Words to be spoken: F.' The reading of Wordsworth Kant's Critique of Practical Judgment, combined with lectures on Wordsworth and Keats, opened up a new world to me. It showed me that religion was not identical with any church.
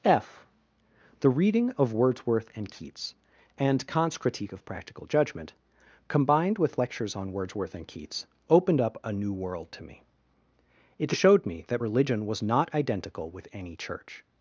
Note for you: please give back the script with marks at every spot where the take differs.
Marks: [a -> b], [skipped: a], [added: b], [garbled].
F.' The reading of Wordsworth [added: and Keats and] Kant's Critique of Practical Judgment, combined with lectures on Wordsworth and Keats, opened up a new world to me. It showed me that religion was not identical with any church.